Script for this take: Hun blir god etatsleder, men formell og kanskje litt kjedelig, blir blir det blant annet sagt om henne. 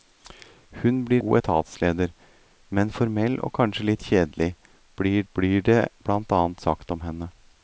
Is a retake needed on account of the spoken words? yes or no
no